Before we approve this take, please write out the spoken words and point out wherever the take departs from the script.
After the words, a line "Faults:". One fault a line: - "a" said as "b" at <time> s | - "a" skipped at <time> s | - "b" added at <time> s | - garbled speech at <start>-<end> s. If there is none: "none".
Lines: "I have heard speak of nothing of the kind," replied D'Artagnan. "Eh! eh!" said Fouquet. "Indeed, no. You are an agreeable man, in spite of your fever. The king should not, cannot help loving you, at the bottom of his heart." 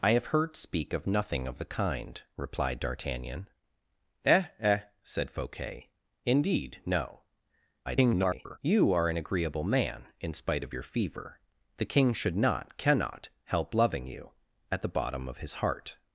"I have heard speak of nothing of the kind," replied D'Artagnan. "Eh! eh!" said Fouquet. "Indeed, no. [garbled] You are an agreeable man, in spite of your fever. The king should not, cannot help loving you, at the bottom of his heart."
Faults:
- garbled speech at 7.9-8.6 s